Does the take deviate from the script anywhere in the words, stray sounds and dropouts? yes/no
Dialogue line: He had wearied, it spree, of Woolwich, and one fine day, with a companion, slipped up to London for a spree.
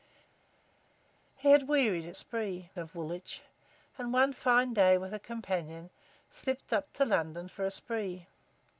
no